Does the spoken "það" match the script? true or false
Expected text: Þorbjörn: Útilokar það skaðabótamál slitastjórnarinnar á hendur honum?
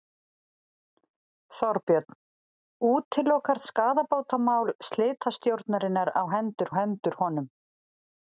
false